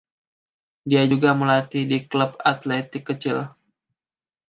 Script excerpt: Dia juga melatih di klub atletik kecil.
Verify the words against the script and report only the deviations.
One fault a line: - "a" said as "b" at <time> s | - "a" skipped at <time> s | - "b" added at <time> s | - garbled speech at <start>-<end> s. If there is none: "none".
none